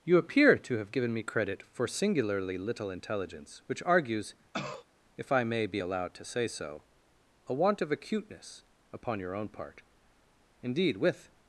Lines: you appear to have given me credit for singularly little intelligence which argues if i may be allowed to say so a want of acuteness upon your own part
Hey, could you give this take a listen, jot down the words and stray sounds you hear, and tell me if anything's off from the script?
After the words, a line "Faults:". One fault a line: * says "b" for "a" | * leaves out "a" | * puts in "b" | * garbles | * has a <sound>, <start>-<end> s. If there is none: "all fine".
you appear to have given me credit for singularly little intelligence which argues if i may be allowed to say so a want of acuteness upon your own part indeed with
Faults:
* has a cough, 4.5-4.8 s
* puts in "indeed with"